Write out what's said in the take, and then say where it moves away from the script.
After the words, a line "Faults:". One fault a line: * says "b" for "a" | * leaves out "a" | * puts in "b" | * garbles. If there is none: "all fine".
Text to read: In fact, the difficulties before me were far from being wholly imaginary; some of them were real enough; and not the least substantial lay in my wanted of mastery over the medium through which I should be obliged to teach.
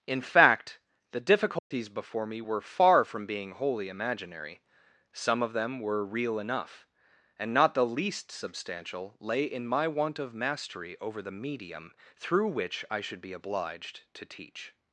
In fact, the difficulties before me were far from being wholly imaginary; some of them were real enough; and not the least substantial lay in my want of mastery over the medium through which I should be obliged to teach.
Faults:
* says "want" for "wanted"